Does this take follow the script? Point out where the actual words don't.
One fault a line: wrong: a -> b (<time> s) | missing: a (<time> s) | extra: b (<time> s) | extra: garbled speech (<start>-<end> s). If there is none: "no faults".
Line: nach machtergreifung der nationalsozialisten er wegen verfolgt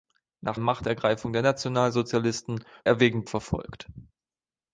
no faults